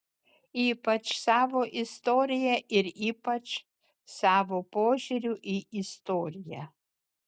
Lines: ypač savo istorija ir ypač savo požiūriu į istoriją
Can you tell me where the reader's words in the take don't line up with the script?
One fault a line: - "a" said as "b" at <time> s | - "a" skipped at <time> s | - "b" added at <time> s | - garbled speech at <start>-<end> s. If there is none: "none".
none